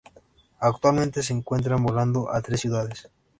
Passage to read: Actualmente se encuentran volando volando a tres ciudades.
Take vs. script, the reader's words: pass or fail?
fail